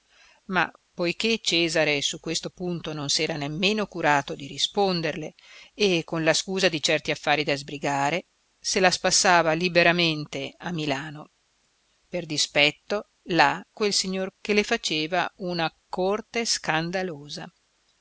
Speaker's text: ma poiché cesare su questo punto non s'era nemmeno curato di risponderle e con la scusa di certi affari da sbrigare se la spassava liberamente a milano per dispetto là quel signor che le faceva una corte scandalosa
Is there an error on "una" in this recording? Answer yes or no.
no